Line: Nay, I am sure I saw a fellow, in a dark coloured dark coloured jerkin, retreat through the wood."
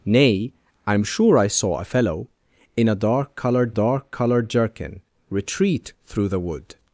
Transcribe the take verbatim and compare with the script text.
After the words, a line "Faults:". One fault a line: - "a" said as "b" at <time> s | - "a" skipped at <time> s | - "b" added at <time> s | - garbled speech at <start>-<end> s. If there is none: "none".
Nay, I am sure I saw a fellow, in a dark coloured dark coloured jerkin, retreat through the wood."
Faults:
none